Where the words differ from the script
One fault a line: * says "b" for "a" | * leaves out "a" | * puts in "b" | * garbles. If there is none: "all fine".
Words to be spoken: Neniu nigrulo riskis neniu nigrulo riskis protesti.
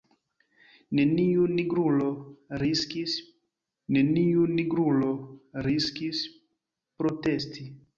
all fine